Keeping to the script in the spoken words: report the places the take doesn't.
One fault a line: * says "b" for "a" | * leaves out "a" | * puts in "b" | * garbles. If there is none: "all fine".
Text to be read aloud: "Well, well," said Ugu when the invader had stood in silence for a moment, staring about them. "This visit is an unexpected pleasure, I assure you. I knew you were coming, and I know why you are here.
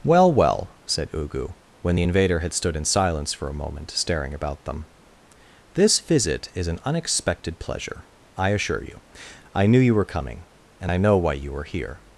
all fine